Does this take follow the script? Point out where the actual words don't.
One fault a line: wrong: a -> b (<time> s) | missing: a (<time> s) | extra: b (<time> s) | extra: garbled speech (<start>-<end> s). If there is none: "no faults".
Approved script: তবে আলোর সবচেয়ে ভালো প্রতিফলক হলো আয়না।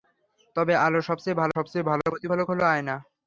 extra: সবচেয়ে ভালো (1.6 s)